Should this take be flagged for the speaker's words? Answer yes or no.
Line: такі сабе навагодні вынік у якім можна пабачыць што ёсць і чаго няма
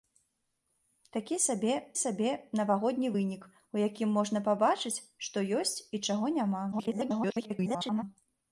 yes